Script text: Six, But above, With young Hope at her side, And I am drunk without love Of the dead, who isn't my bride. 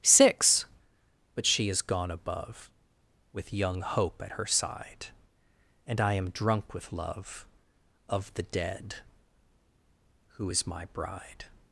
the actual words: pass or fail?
fail